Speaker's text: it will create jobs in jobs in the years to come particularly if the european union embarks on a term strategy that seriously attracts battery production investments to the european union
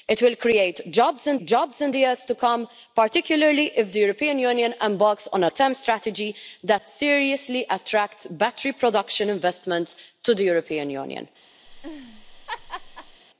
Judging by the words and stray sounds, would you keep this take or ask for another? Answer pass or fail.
fail